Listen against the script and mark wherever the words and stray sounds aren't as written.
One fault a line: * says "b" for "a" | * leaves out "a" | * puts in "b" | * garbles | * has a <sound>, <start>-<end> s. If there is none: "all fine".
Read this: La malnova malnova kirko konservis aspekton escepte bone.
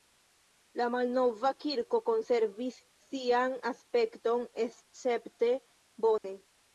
* leaves out "malnova"
* puts in "sian"
* has a dropout, 6.2-6.2 s